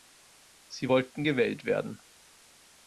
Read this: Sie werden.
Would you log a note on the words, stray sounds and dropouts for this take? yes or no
yes